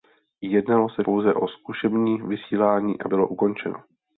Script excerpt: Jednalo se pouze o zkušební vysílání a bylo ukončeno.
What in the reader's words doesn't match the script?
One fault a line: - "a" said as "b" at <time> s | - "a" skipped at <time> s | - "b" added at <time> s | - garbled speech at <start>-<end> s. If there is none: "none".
none